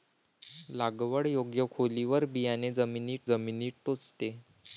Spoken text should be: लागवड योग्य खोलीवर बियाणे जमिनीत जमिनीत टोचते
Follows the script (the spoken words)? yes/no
yes